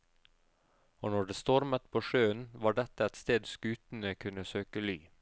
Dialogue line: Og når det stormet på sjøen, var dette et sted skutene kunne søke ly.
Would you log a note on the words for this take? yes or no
no